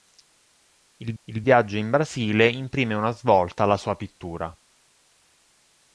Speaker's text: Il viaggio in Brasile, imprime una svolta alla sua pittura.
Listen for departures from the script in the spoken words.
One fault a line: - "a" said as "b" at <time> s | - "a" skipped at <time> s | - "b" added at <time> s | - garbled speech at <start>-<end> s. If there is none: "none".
- "il" added at 1.2 s